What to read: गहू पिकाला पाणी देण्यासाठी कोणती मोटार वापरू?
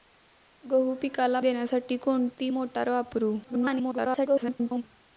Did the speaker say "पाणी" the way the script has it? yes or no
no